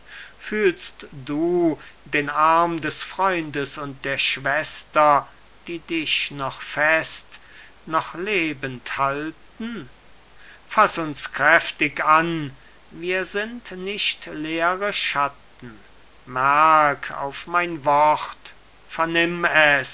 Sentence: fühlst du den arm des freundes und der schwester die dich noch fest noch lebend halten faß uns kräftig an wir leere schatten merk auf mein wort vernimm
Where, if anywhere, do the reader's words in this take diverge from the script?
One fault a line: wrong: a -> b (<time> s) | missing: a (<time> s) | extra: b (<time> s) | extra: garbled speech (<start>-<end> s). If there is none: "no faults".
extra: sind nicht (13.2 s)